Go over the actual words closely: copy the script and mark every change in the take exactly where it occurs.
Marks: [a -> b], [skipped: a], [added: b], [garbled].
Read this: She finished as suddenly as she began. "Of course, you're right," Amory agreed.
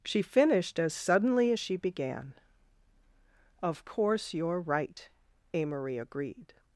She finished as suddenly as she began. "Of course, you're right," Amory agreed.